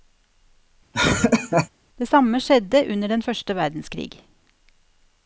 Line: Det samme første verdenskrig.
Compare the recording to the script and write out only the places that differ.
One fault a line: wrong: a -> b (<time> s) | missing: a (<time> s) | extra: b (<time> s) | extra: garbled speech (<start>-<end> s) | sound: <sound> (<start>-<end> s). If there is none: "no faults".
sound: laugh (0.9-1.7 s)
extra: skjedde under den (2.4 s)